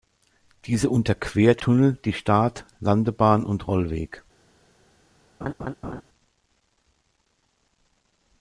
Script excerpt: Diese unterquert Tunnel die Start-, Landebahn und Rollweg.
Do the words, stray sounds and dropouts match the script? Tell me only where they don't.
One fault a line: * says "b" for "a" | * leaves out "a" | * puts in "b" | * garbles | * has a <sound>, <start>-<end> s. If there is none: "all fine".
* has a laugh, 5.4-6.0 s